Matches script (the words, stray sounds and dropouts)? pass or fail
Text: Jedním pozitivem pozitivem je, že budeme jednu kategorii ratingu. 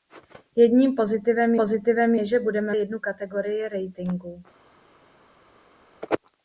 pass